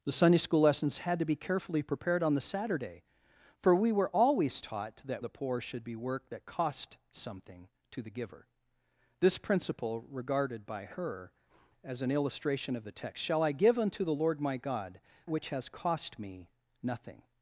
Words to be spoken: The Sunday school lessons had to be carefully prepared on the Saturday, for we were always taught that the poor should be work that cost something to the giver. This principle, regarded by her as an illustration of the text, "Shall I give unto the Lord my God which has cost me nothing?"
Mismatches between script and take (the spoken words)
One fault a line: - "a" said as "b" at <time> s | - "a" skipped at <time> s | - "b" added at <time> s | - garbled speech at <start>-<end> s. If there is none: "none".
none